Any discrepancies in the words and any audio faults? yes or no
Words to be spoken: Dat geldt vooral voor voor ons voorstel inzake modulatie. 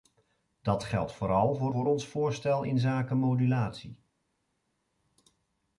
no